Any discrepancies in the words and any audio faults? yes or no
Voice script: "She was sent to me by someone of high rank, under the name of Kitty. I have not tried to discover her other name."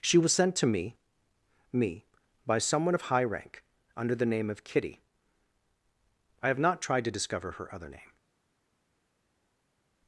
yes